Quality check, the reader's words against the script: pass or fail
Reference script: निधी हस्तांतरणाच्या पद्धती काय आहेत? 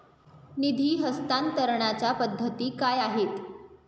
pass